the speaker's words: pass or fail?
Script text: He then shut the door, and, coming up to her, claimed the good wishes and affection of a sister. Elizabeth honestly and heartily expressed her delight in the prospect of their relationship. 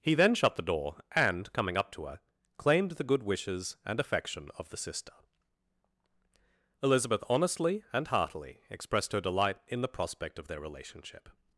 fail